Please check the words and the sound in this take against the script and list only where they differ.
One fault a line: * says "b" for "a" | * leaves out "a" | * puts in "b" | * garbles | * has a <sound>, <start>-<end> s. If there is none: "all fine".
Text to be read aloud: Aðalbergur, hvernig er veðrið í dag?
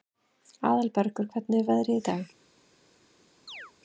* has a chirp, 3.5-3.7 s